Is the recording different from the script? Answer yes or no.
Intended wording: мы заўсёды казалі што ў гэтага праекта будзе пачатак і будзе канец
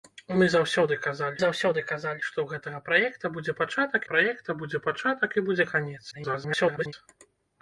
yes